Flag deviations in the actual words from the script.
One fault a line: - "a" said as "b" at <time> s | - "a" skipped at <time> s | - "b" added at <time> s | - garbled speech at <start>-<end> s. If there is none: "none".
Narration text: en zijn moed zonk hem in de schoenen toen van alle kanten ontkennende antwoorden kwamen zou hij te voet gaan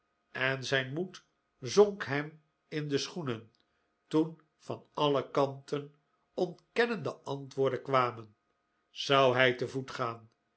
none